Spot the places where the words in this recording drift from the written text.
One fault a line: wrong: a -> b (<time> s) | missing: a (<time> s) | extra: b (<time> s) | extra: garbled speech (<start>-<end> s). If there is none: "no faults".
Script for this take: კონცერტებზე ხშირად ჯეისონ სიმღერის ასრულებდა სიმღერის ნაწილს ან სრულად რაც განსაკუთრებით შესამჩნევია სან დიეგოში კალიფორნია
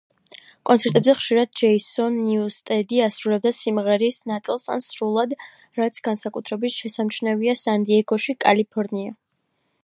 wrong: სიმღერის -> ნიუსტედი (2.3 s)